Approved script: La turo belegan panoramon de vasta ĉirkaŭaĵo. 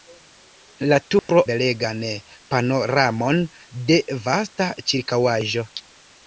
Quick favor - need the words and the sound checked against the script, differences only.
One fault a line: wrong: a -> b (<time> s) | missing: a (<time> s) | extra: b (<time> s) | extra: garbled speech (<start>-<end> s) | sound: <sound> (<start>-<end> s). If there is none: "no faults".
sound: dropout (1.2-1.3 s)